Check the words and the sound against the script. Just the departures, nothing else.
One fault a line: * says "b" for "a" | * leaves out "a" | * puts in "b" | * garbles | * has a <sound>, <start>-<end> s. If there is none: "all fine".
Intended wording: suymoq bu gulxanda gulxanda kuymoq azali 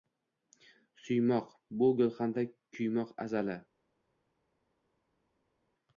* leaves out "gulxanda"